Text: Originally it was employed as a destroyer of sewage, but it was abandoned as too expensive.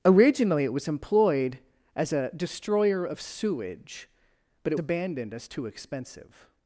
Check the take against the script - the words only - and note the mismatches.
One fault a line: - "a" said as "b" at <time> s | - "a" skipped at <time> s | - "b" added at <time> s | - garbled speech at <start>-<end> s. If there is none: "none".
- "was" skipped at 4.8 s